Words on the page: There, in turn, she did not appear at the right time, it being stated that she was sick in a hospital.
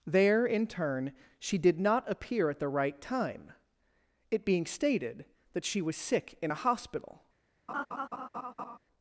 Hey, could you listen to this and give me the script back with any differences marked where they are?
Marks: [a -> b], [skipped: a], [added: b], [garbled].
There, in turn, she did not appear at the right time, it being stated that she was sick in a hospital.